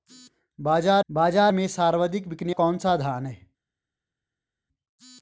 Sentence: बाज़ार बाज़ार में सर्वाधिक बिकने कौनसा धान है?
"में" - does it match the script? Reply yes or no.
yes